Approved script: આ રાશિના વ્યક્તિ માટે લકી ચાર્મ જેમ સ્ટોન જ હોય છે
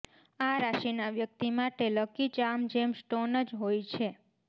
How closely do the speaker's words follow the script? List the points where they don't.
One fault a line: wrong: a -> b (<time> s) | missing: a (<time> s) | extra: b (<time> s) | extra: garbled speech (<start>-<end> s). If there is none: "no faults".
no faults